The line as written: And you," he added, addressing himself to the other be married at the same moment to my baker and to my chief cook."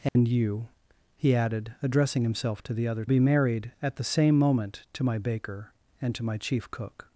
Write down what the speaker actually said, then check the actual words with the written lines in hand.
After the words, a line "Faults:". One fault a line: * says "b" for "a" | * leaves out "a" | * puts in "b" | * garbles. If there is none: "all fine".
And you," he added, addressing himself to the other be married at the same moment to my baker and to my chief cook."
Faults:
all fine